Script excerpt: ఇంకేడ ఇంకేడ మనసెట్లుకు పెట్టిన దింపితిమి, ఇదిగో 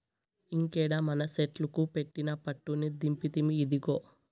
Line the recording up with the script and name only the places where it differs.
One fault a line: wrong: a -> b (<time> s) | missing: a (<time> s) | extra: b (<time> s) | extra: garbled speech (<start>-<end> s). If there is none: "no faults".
missing: ఇంకేడ (0.9 s)
extra: పట్టుని (2.4 s)